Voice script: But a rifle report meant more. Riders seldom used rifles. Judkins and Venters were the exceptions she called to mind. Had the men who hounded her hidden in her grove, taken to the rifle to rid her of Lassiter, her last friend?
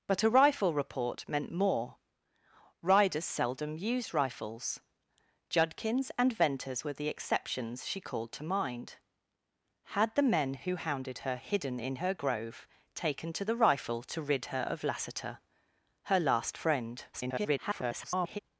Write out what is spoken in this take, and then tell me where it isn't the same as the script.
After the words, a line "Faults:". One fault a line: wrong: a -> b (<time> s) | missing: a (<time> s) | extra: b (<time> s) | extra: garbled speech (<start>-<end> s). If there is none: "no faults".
But a rifle report meant more. Riders seldom used rifles. Judkins and Venters were the exceptions she called to mind. Had the men who hounded her hidden in her grove, taken to the rifle to rid her of Lassiter, her last friend? [garbled]
Faults:
extra: garbled speech (17.1-18.4 s)